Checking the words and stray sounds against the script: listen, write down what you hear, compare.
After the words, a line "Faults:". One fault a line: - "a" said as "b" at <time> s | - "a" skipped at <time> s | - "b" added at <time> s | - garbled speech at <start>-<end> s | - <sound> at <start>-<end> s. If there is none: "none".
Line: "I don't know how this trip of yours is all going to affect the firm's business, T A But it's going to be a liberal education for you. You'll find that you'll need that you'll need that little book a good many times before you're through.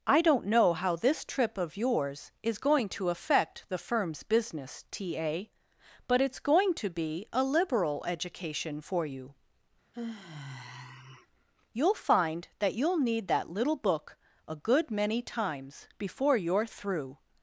"I don't know how this trip of yours is going to affect the firm's business, T A But it's going to be a liberal education for you. You'll find that you'll need that little book a good many times before you're through.
Faults:
- "all" skipped at 2.6 s
- sigh at 9.9-11.3 s
- "you'll need that" skipped at 13.5 s